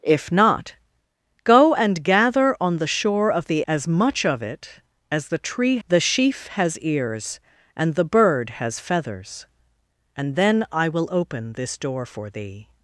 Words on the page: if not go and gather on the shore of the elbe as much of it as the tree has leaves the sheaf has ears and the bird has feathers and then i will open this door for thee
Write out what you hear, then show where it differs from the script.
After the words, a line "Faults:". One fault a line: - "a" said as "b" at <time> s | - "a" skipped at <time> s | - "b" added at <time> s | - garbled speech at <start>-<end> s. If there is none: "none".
if not go and gather on the shore of the as much of it as the tree the sheaf has ears and the bird has feathers and then i will open this door for thee
Faults:
- "elbe" skipped at 3.6 s
- "has leaves" skipped at 5.8 s